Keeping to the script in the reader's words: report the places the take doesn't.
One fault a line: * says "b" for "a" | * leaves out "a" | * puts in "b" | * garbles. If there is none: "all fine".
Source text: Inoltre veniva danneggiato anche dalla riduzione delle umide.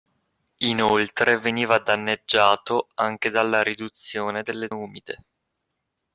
all fine